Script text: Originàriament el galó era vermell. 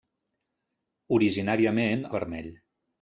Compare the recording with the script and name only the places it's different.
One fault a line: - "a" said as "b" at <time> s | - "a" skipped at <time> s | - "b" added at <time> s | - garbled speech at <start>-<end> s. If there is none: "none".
- "el galó era" skipped at 2.0 s